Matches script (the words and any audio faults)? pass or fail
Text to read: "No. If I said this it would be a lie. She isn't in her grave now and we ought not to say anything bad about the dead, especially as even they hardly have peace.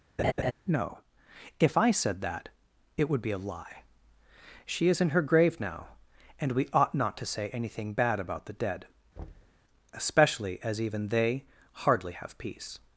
fail